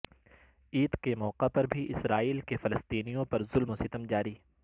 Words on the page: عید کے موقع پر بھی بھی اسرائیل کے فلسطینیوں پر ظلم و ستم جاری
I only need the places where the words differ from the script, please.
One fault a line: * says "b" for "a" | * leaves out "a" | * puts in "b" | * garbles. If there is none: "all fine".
* leaves out "بھی"